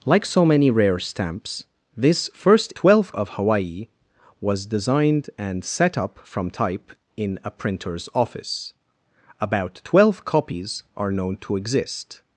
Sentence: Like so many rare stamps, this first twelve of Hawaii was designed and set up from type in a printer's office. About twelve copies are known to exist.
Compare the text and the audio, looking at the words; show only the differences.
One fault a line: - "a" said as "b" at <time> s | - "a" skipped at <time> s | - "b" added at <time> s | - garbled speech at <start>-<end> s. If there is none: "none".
none